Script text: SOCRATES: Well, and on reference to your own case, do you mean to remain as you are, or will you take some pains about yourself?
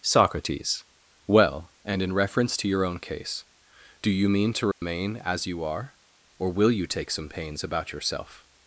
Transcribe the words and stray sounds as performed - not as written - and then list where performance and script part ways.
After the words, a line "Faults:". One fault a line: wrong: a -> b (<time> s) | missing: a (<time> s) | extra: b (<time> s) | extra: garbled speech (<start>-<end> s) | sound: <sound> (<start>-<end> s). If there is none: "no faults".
SOCRATES: Well, and in reference to your own case, do you mean to remain as you are, or will you take some pains about yourself?
Faults:
wrong: on -> in (2.0 s)
sound: dropout (4.7-4.8 s)